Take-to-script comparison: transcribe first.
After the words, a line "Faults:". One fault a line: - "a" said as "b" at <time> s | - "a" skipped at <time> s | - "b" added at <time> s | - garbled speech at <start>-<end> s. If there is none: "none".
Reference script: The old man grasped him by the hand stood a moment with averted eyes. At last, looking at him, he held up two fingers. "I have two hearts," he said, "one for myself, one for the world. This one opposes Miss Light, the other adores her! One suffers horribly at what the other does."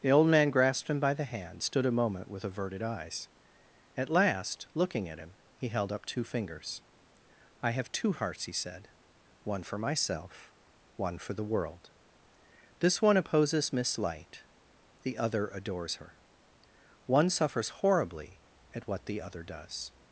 The old man grasped him by the hand stood a moment with averted eyes. At last, looking at him, he held up two fingers. "I have two hearts," he said, "one for myself, one for the world. This one opposes Miss Light, the other adores her! One suffers horribly at what the other does."
Faults:
none